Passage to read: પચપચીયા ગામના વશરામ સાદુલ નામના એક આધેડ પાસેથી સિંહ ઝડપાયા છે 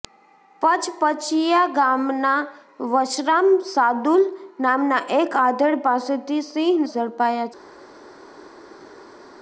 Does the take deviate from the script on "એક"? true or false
false